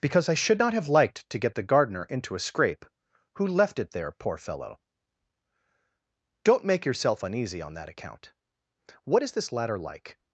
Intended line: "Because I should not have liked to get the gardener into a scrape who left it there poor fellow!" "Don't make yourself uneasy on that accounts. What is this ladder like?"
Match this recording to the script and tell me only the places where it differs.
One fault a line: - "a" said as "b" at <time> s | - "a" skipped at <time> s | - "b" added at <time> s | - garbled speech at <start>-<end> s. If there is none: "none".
- "accounts" said as "account" at 7.9 s